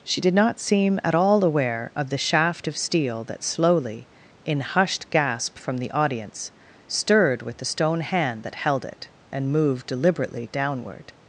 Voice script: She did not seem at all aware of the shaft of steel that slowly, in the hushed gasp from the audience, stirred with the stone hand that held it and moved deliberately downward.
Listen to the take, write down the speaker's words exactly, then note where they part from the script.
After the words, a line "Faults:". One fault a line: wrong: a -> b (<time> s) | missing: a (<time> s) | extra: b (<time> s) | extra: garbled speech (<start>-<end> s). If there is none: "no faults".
She did not seem at all aware of the shaft of steel that slowly, in hushed gasp from the audience, stirred with the stone hand that held it and moved deliberately downward.
Faults:
missing: the (4.6 s)